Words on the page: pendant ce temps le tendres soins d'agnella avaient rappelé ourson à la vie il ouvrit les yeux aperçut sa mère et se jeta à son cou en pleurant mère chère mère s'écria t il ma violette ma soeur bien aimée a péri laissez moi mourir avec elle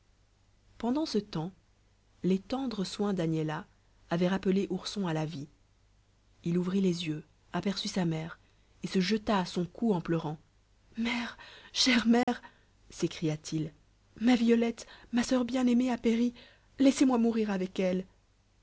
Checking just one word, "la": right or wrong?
right